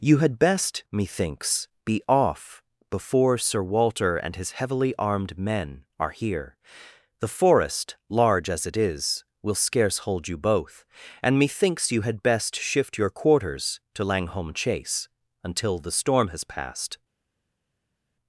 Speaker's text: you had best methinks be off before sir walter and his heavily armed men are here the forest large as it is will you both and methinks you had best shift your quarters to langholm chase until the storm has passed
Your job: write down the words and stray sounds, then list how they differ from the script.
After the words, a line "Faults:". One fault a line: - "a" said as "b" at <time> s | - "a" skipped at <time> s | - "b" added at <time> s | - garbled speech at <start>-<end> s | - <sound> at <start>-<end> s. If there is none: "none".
you had best methinks be off before sir walter and his heavily armed men are here the forest large as it is will scarce hold you both and methinks you had best shift your quarters to langholm chase until the storm has passed
Faults:
- "scarce hold" added at 9.5 s